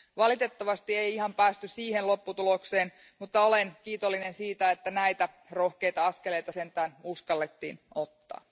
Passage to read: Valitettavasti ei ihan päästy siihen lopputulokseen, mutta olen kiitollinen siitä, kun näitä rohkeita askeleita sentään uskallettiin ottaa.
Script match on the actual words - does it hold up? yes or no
no